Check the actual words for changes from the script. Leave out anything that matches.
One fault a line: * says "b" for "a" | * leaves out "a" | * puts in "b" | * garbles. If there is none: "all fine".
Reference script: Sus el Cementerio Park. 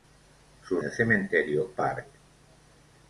all fine